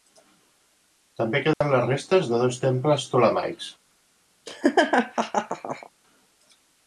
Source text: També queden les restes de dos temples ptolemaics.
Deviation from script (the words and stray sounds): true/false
true